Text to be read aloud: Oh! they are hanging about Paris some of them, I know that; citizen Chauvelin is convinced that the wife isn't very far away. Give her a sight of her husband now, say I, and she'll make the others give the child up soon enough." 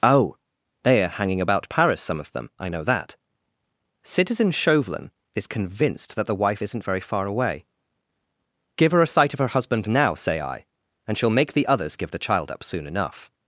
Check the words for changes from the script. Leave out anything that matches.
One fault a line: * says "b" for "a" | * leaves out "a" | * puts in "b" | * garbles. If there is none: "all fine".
all fine